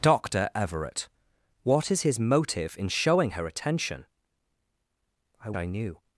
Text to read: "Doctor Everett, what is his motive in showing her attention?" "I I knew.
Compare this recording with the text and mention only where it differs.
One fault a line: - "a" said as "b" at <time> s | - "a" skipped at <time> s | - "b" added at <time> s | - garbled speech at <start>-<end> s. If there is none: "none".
none